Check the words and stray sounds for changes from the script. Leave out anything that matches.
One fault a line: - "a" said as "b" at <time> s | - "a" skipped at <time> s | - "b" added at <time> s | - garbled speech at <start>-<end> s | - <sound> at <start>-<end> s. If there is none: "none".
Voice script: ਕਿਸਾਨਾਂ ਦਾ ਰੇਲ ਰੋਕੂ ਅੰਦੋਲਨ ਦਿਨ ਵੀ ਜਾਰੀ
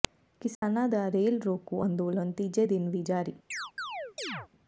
- dropout at 0.5-0.6 s
- "ਤੀਜੇ" added at 2.3 s
- chirp at 3.5-4.5 s